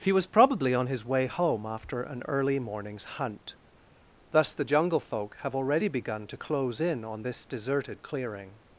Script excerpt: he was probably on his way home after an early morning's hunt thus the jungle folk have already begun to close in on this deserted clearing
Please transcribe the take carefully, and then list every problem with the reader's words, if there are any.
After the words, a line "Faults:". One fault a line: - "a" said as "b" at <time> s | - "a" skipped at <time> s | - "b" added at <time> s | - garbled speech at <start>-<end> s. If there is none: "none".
he was probably on his way home after an early morning's hunt thus the jungle folk have already begun to close in on this deserted clearing
Faults:
none